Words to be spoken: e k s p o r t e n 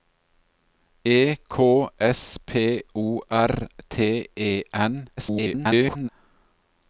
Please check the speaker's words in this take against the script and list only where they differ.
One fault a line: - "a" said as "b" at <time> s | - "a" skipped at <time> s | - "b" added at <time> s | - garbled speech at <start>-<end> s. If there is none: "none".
- garbled speech at 5.2-6.1 s